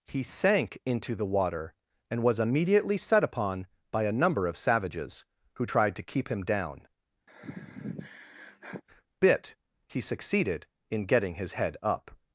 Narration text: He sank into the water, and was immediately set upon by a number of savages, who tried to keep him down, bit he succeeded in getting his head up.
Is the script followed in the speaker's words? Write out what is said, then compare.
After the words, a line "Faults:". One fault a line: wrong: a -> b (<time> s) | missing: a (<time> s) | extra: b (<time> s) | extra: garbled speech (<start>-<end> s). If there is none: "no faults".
He sank into the water, and was immediately set upon by a number of savages, who tried to keep him down, bit he succeeded in getting his head up.
Faults:
no faults